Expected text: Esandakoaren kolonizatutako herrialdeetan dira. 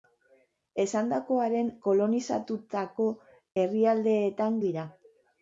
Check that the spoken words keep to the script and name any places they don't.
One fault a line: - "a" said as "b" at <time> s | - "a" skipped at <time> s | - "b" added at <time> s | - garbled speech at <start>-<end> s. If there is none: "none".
none